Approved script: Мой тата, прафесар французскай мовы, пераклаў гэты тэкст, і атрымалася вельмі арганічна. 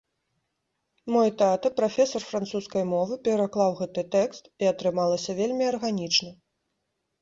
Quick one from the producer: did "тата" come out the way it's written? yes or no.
yes